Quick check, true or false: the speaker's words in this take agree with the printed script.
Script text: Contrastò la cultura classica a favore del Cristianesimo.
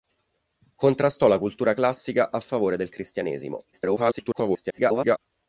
false